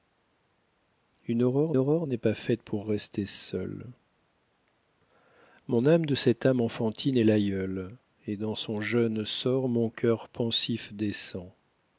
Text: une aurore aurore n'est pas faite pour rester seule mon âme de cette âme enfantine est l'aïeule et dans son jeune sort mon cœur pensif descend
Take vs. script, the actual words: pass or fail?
pass